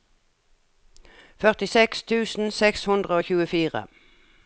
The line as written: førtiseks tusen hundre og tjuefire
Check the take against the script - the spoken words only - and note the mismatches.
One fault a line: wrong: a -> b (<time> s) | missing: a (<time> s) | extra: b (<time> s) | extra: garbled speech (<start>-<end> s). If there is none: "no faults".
extra: seks (2.6 s)